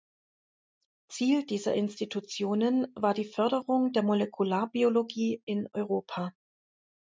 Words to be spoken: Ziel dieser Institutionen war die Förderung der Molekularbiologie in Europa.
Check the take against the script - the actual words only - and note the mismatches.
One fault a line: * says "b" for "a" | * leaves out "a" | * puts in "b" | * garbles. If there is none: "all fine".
all fine